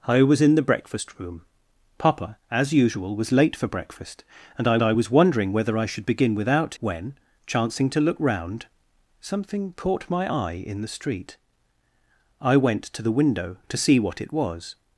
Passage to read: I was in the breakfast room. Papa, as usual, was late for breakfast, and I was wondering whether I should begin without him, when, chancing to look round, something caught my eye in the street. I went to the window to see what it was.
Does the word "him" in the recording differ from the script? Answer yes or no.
yes